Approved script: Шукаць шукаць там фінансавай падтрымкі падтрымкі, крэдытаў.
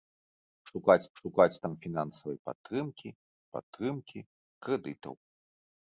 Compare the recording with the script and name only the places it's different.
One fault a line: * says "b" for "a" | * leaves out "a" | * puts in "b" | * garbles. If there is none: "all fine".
all fine